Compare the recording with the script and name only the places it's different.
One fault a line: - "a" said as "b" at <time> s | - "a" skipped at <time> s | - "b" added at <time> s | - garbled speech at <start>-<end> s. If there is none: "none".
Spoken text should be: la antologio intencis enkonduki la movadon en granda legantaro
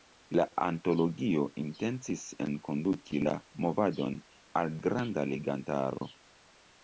- "en" said as "al" at 4.6 s